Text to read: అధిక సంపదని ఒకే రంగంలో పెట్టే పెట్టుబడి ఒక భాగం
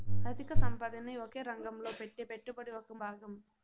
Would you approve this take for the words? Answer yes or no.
yes